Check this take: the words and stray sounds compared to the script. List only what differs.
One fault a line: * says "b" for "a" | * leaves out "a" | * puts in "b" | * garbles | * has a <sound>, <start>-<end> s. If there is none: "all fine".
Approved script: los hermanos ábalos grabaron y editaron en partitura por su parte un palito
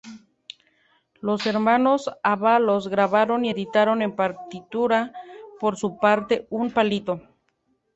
all fine